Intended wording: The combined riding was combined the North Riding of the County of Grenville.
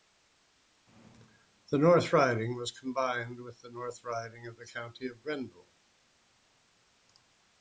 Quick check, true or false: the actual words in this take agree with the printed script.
false